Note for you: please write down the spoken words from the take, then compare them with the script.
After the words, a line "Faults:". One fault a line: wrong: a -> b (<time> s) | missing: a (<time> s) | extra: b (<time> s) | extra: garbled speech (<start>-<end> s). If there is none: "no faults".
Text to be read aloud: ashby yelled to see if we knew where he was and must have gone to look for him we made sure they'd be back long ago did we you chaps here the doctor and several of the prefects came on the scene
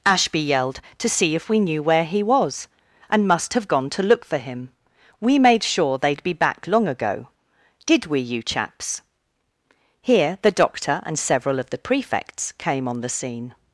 ashby yelled to see if we knew where he was and must have gone to look for him we made sure they'd be back long ago did we you chaps here the doctor and several of the prefects came on the scene
Faults:
no faults